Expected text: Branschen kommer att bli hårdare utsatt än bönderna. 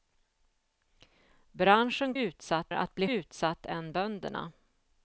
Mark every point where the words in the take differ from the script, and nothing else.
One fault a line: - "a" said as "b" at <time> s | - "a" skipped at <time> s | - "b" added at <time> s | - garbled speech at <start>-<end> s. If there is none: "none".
- "kommer" said as "utsatt" at 2.1 s
- "hårdare" skipped at 3.1 s